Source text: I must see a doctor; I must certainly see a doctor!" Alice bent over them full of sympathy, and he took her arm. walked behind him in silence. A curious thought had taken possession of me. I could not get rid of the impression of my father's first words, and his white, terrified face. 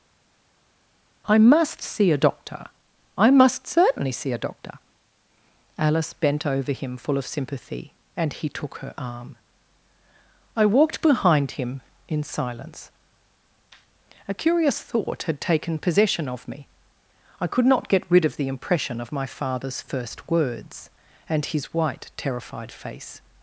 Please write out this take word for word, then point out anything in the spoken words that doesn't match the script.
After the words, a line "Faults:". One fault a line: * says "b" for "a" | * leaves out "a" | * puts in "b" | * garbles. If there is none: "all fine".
I must see a doctor; I must certainly see a doctor!" Alice bent over him full of sympathy, and he took her arm. I walked behind him in silence. A curious thought had taken possession of me. I could not get rid of the impression of my father's first words, and his white, terrified face.
Faults:
* says "him" for "them"
* puts in "I"